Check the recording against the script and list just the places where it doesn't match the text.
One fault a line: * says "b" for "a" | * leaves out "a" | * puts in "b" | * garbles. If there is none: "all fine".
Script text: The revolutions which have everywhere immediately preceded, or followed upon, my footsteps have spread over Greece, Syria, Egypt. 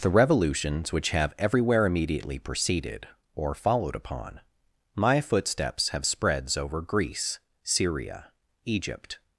* says "spreads" for "spread"